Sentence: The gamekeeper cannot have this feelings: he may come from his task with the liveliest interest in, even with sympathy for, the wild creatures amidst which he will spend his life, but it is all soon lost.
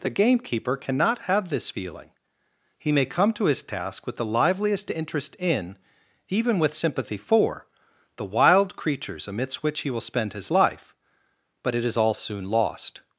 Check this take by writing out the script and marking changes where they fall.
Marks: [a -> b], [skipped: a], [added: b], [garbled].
The gamekeeper cannot have this [feelings: -> feeling] he may come [from -> to] his task with the liveliest interest in, even with sympathy for, the wild creatures amidst which he will spend his life, but it is all soon lost.